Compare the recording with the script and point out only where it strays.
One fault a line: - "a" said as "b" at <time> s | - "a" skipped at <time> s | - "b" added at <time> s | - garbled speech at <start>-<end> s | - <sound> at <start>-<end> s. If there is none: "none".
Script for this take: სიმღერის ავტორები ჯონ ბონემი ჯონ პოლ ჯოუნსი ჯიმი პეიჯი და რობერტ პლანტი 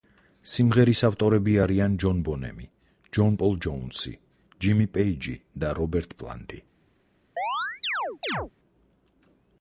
- "არიან" added at 1.6 s
- chirp at 7.4-8.5 s